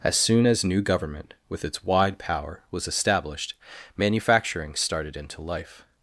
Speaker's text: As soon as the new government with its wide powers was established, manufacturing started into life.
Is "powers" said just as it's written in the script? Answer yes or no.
no